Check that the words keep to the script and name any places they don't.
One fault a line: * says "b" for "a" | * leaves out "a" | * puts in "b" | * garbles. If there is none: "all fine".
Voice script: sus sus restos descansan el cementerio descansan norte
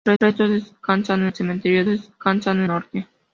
all fine